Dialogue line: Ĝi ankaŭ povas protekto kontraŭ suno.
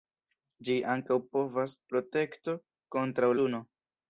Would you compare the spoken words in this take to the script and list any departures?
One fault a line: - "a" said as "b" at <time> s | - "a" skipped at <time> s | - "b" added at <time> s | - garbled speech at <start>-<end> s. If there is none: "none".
none